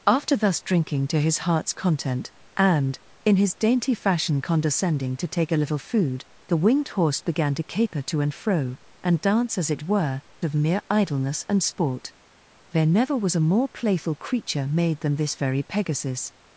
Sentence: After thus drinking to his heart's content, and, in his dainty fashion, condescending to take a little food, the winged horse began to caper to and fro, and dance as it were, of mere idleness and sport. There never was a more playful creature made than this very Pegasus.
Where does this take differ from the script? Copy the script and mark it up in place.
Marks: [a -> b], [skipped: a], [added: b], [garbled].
After thus drinking to his heart's content, and, in his dainty fashion, condescending to take a little food, the winged horse began to caper to and fro, and dance as it were, of mere idleness and sport. There never was a more playful creature made than this very Pegasus.